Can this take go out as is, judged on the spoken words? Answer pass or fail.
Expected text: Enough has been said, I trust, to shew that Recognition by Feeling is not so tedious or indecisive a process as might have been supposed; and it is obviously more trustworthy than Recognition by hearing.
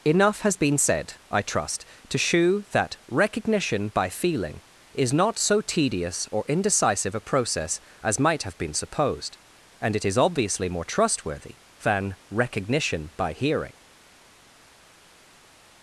pass